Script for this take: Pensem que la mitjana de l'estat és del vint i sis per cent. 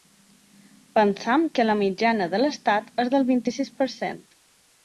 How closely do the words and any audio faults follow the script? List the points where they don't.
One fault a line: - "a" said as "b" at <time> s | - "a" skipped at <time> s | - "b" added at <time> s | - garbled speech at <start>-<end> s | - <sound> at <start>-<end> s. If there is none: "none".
none